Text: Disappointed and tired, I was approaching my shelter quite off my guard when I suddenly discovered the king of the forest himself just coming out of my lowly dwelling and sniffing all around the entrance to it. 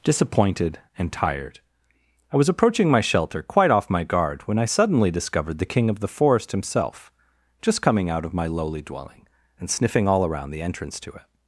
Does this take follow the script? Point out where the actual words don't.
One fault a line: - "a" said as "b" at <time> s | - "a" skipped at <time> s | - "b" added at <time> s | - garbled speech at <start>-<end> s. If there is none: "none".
none